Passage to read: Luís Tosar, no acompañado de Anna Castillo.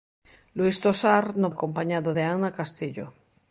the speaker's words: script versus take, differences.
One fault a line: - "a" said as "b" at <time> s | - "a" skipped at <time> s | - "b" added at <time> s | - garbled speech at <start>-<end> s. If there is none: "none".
none